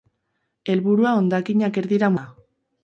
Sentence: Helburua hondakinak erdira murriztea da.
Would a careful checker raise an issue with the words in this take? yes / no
yes